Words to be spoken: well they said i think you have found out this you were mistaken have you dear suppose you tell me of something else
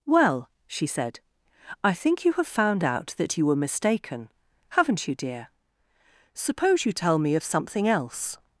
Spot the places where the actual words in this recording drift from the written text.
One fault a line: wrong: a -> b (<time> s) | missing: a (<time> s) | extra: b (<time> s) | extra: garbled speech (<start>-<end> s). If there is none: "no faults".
wrong: they -> she (0.7 s)
wrong: this -> that (3.2 s)
wrong: have -> haven't (4.7 s)